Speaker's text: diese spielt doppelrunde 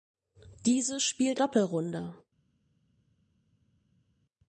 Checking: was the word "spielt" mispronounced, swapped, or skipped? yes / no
no